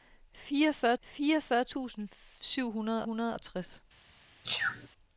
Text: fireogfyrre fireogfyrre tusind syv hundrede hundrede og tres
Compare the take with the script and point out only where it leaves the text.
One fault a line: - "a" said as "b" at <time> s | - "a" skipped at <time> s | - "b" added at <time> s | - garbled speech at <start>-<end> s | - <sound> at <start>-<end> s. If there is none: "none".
- sneeze at 4.4-4.9 s